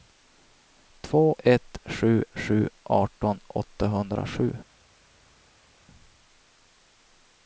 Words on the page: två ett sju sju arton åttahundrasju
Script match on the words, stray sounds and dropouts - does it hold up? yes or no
yes